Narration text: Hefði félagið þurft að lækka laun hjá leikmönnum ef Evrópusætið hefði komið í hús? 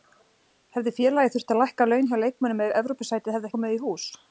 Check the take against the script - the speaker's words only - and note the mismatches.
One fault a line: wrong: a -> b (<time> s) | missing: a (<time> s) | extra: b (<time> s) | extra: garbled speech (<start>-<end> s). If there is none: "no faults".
no faults